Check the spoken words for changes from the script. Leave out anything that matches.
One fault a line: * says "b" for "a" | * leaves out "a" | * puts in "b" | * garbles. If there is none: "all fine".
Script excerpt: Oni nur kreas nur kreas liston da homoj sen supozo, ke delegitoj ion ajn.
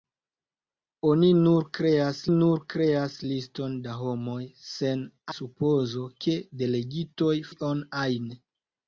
all fine